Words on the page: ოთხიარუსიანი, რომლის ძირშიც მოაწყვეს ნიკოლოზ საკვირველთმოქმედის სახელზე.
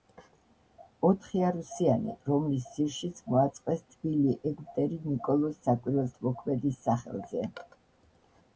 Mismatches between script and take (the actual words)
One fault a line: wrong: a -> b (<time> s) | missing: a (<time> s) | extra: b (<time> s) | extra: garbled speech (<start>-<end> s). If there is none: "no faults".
extra: თბილი ეგვტერი (3.9 s)